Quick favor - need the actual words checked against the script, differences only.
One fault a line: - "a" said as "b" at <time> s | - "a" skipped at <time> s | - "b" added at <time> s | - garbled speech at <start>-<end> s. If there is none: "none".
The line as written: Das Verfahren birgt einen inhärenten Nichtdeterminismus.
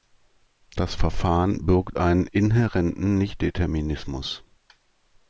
none